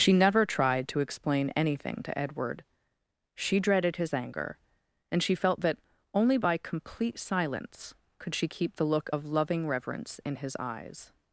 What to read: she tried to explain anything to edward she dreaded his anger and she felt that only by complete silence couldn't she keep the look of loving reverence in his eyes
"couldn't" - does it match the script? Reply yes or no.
no